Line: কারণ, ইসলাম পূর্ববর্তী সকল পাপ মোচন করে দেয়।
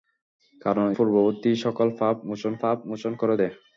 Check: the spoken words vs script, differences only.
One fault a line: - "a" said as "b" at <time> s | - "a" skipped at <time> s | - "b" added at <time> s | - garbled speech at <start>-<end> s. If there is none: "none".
- "ইসলাম" skipped at 0.9 s
- "পাপ মোচন" added at 2.6 s